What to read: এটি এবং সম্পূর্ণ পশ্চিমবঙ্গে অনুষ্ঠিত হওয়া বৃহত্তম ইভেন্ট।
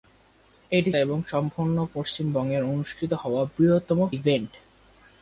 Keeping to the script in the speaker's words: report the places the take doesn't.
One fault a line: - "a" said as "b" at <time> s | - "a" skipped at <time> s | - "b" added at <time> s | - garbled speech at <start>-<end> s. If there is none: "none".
none